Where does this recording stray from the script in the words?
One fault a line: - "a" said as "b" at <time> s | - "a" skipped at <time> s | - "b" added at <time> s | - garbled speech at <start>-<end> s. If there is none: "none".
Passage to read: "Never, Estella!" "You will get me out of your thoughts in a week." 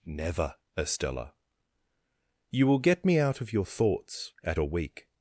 - "in" said as "at" at 4.4 s